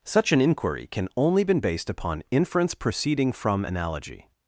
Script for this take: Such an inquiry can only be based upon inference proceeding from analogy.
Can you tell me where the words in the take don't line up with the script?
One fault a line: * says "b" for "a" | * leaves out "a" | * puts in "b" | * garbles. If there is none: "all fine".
* says "been" for "be"